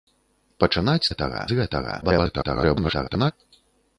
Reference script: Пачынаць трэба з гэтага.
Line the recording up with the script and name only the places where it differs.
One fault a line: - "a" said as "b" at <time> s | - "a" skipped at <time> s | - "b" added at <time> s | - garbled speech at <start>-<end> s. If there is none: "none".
- "трэба" said as "гэтага" at 1.1 s
- garbled speech at 2.0-3.3 s